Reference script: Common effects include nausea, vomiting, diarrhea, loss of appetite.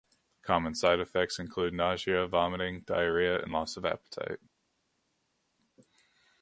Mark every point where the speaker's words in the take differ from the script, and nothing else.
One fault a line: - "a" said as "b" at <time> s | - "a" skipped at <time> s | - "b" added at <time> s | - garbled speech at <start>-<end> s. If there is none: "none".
- "side" added at 0.7 s
- "and" added at 3.4 s